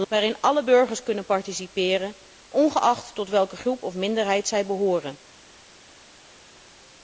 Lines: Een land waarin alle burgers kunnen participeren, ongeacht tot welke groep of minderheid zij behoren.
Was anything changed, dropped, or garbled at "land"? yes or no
yes